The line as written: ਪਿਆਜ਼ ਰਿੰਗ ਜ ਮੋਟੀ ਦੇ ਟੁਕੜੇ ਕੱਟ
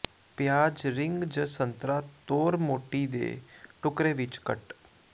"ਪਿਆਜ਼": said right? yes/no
yes